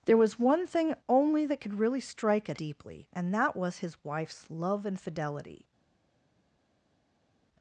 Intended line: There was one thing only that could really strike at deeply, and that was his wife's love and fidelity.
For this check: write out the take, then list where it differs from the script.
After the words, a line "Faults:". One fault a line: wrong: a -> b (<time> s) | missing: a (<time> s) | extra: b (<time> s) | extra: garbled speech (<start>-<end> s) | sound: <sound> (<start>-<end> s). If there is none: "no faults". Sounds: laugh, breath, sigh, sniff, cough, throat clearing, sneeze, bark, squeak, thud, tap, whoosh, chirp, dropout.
There was one thing only that could really strike at deeply, and that was his wife's love and fidelity.
Faults:
no faults